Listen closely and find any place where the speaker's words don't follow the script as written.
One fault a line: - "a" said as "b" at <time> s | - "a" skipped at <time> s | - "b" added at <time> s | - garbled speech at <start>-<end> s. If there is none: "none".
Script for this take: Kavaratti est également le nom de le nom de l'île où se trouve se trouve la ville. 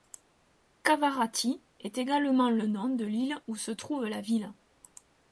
- "le nom de" skipped at 3.0 s
- "se trouve" skipped at 4.0 s